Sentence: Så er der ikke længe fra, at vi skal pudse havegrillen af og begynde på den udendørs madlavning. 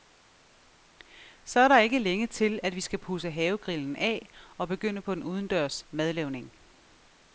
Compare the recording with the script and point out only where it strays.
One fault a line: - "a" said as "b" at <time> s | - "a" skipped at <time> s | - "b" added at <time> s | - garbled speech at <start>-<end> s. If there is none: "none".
- "fra" said as "til" at 2.3 s